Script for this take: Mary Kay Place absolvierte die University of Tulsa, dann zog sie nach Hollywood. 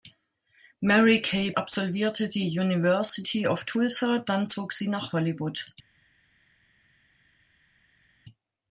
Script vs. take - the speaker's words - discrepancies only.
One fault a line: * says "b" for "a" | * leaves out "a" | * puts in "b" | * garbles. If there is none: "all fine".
* leaves out "Place"